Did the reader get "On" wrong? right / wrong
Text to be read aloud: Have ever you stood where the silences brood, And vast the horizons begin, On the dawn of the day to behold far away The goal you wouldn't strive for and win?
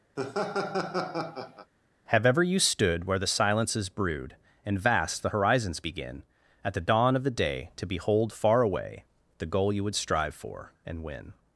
wrong